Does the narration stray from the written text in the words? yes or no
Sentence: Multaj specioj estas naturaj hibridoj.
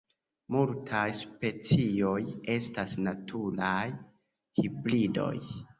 no